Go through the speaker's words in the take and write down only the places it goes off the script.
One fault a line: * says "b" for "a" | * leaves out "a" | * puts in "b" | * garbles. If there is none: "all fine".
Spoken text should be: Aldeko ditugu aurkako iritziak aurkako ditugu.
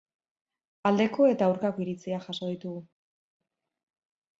* says "eta" for "ditugu"
* says "jaso" for "aurkako"